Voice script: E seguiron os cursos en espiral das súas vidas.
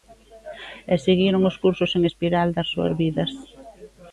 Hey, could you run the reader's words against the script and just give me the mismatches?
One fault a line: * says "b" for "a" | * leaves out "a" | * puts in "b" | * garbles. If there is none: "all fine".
all fine